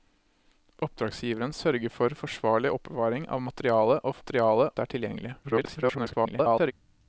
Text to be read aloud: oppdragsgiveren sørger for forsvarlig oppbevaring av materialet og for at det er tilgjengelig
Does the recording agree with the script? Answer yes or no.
no